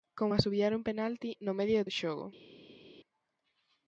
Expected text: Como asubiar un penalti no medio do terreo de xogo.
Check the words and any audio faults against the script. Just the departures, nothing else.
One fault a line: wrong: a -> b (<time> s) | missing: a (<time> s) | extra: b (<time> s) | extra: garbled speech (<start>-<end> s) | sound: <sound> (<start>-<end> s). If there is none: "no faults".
missing: terreo (1.9 s)